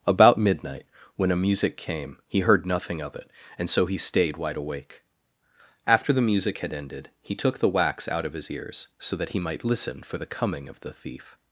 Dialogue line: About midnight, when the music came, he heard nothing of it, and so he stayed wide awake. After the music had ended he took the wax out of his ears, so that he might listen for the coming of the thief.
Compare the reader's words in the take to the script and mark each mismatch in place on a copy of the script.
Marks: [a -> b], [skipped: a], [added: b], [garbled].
About midnight, when [the -> a] music came, he heard nothing of it, and so he stayed wide awake. After the music had ended he took the wax out of his ears, so that he might listen for the coming of the thief.